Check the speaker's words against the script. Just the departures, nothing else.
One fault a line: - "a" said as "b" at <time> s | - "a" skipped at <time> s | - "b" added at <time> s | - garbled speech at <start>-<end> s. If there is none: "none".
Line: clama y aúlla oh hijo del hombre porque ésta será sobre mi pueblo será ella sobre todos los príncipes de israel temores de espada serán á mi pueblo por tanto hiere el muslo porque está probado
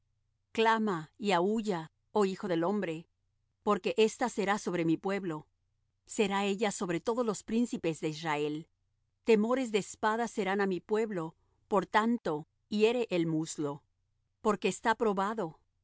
none